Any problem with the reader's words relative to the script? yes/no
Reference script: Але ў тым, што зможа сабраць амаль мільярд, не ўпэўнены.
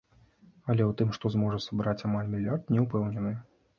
no